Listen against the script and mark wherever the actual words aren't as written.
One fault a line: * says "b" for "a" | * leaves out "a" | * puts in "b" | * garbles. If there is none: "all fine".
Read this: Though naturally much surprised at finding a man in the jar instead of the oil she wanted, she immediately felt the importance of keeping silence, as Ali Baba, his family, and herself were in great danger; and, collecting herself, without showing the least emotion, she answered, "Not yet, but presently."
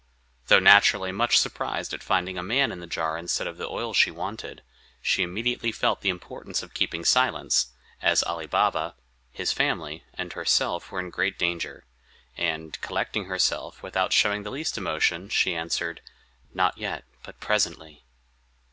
all fine